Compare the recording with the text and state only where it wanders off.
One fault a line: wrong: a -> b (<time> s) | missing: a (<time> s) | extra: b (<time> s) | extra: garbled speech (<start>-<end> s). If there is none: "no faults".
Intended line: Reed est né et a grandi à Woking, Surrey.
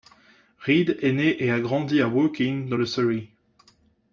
extra: dans le (2.7 s)